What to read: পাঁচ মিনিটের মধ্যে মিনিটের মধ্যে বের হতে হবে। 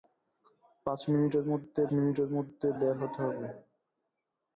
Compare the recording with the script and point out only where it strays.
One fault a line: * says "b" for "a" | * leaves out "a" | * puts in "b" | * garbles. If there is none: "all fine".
all fine